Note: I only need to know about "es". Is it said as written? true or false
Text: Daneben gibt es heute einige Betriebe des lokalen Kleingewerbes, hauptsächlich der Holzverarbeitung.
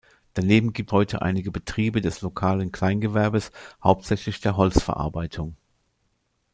false